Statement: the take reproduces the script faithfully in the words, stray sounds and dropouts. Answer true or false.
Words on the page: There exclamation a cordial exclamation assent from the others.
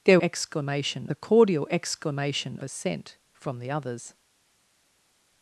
true